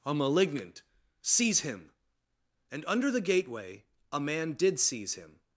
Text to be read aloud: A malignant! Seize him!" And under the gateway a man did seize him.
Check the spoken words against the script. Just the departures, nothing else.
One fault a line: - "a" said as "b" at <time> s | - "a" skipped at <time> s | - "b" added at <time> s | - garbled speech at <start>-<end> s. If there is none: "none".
none